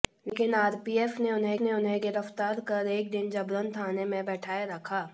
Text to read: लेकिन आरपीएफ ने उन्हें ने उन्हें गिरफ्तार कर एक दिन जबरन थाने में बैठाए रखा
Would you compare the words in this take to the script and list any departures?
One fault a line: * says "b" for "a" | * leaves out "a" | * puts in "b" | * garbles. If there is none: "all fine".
all fine